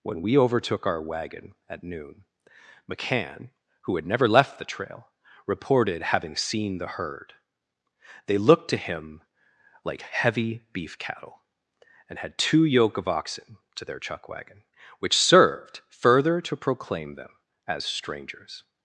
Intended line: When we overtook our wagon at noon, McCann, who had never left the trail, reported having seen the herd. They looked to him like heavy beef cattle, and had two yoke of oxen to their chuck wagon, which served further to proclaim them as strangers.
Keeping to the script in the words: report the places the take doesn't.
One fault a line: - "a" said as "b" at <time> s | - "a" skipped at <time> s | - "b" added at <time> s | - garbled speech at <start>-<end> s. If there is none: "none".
none